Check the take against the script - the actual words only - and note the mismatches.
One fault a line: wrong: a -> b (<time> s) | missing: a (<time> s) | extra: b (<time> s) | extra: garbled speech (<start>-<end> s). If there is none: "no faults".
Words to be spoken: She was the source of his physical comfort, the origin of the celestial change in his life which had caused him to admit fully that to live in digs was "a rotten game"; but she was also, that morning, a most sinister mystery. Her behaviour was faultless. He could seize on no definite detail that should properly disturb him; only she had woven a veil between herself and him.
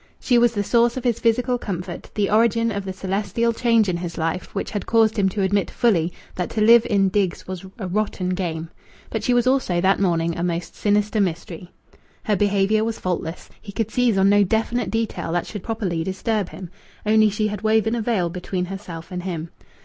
no faults